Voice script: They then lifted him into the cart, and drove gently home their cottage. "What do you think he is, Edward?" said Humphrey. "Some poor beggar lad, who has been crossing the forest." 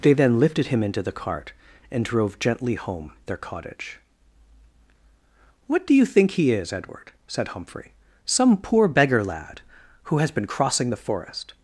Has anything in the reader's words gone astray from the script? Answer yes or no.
no